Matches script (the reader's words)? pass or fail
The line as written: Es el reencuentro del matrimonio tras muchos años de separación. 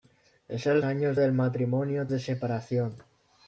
fail